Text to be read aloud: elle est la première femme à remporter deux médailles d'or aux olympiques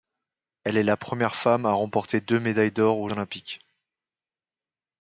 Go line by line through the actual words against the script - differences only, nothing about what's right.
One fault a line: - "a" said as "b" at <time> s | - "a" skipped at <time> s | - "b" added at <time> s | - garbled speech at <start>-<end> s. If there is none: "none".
none